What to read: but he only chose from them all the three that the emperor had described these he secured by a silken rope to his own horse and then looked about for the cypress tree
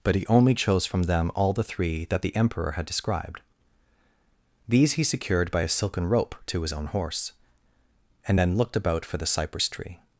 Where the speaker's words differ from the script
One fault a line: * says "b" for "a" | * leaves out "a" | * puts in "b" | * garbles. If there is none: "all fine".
all fine